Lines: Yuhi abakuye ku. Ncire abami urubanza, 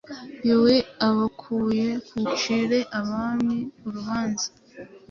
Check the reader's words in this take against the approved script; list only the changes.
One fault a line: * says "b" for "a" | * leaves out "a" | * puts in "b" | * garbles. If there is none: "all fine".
all fine